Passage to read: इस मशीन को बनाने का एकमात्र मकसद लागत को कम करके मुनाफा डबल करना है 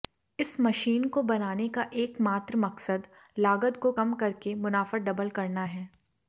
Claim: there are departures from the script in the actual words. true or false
false